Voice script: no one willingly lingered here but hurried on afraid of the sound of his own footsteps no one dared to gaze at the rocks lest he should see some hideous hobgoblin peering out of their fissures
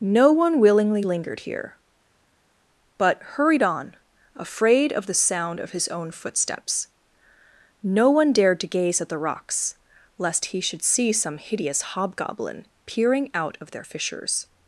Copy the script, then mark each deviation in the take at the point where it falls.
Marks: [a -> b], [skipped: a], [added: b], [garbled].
no one willingly lingered here but hurried on afraid of the sound of his own footsteps no one dared to gaze at the rocks lest he should see some hideous hobgoblin peering out of their fissures